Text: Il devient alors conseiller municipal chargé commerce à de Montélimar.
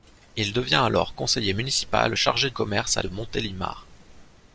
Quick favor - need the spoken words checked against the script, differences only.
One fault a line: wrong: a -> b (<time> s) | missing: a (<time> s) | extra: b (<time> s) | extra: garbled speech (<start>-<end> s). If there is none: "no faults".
no faults